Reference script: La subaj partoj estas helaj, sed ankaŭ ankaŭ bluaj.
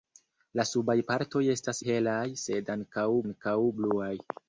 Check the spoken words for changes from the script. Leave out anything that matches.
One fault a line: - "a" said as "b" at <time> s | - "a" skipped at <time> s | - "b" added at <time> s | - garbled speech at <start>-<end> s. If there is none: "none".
none